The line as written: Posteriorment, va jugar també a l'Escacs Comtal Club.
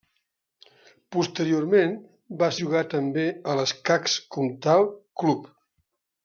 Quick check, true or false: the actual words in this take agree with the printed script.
true